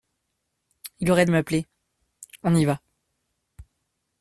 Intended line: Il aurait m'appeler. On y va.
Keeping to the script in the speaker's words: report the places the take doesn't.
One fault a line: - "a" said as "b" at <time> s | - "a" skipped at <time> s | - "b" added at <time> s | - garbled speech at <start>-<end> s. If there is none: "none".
none